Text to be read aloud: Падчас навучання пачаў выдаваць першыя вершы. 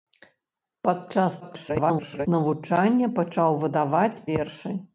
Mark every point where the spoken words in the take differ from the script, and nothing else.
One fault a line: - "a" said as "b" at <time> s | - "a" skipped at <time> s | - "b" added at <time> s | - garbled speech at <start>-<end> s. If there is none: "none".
- garbled speech at 1.4-2.3 s
- "першыя" skipped at 4.2 s